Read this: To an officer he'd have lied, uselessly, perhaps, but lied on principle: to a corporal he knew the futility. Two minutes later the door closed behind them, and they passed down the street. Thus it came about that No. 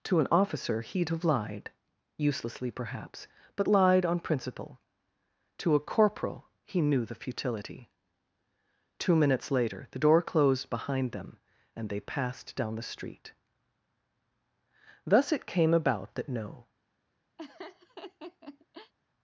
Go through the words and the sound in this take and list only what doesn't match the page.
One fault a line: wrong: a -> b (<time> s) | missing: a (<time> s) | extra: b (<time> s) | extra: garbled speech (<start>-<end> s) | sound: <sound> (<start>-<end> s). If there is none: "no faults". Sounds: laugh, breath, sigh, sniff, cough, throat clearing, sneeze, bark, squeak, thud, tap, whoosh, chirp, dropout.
sound: laugh (17.4-18.9 s)